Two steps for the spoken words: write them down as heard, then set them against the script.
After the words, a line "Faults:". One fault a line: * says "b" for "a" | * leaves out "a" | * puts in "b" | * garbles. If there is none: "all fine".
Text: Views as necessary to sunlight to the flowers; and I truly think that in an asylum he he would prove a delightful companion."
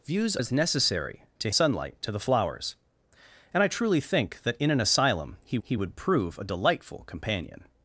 Views as necessary to sunlight to the flowers; and I truly think that in an asylum he he would prove a delightful companion."
Faults:
all fine